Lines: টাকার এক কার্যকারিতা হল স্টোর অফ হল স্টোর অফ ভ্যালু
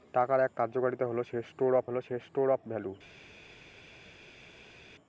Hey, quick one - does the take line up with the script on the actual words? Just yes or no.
yes